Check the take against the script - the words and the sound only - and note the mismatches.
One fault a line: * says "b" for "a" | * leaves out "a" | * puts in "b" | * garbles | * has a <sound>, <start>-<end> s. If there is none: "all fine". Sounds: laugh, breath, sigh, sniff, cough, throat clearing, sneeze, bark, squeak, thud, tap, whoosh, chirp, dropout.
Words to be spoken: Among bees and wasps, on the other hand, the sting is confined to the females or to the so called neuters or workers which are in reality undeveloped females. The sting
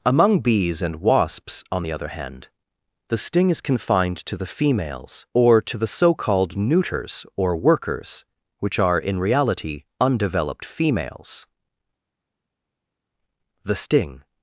all fine